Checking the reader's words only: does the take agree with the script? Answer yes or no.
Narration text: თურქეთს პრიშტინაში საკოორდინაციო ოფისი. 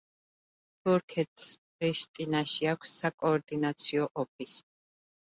no